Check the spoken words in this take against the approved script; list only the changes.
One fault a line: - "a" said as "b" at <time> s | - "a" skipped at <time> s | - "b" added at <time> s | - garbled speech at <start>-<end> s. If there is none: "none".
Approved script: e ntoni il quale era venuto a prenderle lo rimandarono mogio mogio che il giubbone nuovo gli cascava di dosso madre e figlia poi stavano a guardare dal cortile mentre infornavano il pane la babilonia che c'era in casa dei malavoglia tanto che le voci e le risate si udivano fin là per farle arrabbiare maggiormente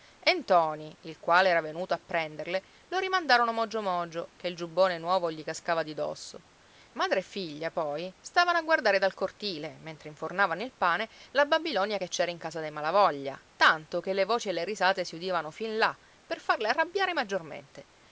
none